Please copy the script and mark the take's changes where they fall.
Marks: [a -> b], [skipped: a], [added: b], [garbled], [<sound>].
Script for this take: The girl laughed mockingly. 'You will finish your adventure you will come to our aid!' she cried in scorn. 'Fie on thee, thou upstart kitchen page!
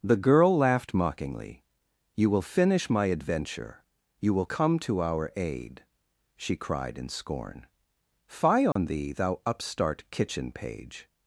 The girl laughed mockingly. 'You will finish [your -> my] adventure you will come to our aid!' she cried in scorn. 'Fie on [dropout] thee, thou upstart kitchen page!